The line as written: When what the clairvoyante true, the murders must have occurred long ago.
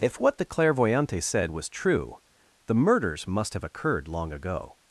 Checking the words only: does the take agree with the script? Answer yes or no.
no